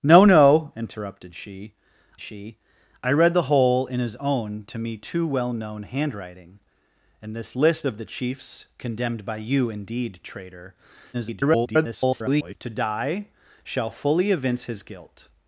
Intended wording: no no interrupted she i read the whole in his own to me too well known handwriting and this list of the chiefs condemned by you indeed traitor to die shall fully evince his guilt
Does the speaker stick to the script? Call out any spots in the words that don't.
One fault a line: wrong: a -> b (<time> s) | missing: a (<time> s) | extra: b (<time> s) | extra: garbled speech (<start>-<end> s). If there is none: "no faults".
extra: she (2.2 s)
extra: garbled speech (11.1-12.6 s)